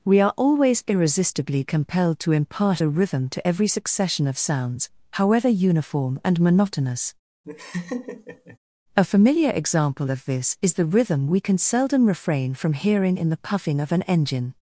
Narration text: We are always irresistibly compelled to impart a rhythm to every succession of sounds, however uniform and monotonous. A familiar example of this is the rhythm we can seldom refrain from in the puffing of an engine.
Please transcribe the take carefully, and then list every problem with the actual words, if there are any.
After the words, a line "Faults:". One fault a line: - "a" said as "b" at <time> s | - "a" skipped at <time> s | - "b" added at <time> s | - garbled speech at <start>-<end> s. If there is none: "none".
We are always irresistibly compelled to impart a rhythm to every succession of sounds, however uniform and monotonous. A familiar example of this is the rhythm we can seldom refrain from hearing in the puffing of an engine.
Faults:
- "hearing" added at 12.7 s